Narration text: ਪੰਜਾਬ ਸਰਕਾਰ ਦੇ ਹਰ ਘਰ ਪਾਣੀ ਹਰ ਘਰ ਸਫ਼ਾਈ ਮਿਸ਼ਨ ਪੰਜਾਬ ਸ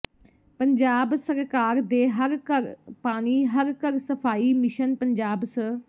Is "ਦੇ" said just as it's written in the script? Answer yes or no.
yes